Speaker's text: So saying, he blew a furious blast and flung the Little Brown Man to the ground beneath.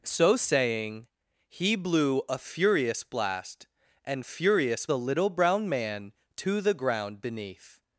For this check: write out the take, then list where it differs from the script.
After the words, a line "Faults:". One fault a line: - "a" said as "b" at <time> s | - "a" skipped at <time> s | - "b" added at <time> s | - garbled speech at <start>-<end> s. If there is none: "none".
So saying, he blew a furious blast and furious the Little Brown Man to the ground beneath.
Faults:
- "flung" said as "furious" at 4.2 s